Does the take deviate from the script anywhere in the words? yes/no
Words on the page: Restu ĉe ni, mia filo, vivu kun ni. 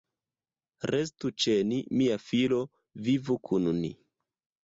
no